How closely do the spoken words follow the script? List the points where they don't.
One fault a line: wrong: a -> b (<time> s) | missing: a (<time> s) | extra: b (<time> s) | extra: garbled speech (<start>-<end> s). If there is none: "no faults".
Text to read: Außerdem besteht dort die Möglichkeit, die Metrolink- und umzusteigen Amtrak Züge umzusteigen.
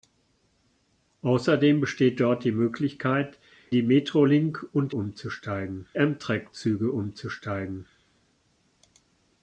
no faults